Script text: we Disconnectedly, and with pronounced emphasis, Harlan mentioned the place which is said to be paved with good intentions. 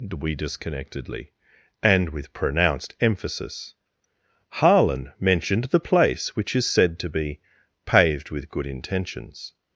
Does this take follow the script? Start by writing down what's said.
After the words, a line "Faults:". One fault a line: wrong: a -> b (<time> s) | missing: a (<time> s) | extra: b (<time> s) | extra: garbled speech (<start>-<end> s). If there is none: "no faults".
we Disconnectedly, and with pronounced emphasis, Harlan mentioned the place which is said to be paved with good intentions.
Faults:
no faults